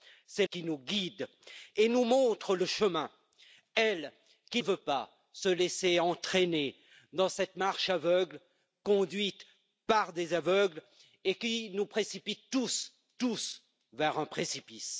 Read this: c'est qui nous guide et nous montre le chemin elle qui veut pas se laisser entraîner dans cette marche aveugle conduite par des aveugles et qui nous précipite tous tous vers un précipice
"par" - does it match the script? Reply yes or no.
yes